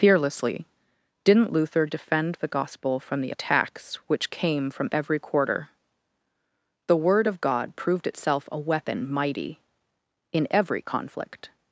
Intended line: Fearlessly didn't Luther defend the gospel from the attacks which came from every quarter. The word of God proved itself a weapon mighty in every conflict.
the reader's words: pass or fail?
pass